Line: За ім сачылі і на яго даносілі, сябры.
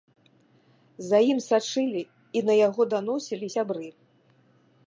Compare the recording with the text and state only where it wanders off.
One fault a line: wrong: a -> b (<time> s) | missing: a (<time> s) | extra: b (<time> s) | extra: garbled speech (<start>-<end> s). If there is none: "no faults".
no faults